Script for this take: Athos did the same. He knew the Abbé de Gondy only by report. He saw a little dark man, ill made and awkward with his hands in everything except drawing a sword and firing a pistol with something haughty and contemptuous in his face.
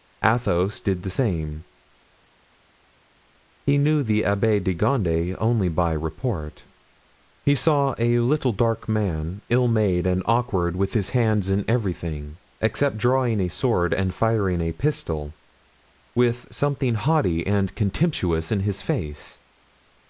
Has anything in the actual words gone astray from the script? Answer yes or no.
no